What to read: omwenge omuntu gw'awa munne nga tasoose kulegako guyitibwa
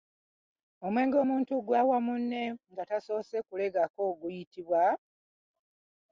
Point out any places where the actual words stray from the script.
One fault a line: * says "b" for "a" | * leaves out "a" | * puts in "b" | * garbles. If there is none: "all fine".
all fine